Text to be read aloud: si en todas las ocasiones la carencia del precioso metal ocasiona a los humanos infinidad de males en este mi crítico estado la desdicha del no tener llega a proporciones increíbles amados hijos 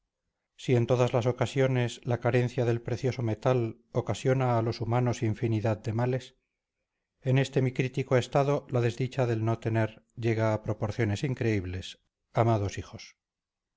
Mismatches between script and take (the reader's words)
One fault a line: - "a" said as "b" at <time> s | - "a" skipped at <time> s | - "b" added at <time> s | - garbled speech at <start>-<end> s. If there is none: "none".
none